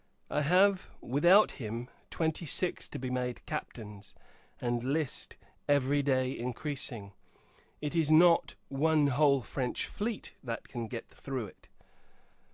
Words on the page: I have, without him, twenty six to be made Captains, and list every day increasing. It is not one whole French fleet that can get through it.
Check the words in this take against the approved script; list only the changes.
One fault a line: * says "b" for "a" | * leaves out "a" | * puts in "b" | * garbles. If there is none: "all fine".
all fine